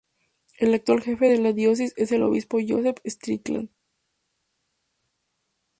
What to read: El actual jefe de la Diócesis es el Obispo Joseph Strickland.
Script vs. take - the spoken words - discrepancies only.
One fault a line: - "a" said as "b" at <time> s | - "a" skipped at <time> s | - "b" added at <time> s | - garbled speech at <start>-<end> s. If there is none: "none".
none